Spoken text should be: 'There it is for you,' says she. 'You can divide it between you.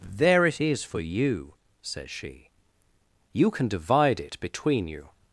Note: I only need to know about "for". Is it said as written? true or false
true